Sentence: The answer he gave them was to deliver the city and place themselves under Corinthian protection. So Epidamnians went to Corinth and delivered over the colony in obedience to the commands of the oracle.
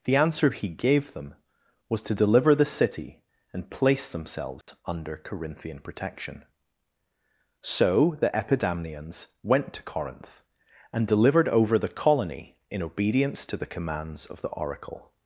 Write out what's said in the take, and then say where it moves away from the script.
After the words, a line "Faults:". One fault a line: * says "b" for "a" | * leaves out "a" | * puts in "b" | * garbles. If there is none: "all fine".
The answer he gave them was to deliver the city and place themselves under Corinthian protection. So the Epidamnians went to Corinth and delivered over the colony in obedience to the commands of the oracle.
Faults:
* puts in "the"